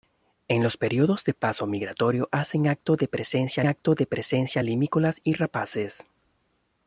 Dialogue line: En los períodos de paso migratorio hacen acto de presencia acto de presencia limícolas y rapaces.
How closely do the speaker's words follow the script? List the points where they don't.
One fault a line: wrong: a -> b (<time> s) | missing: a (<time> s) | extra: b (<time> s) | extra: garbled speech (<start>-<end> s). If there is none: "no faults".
no faults